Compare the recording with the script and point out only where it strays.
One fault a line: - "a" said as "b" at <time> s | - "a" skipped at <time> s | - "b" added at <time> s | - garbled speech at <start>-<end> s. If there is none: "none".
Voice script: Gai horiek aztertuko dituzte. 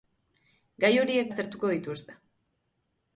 none